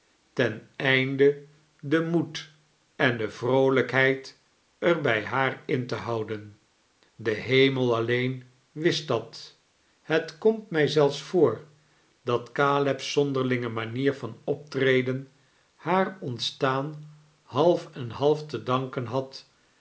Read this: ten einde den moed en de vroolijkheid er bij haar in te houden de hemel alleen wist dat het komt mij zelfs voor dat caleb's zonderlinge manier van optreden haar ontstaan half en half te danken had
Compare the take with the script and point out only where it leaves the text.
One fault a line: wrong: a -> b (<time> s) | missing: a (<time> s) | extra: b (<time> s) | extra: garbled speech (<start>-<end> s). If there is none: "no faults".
no faults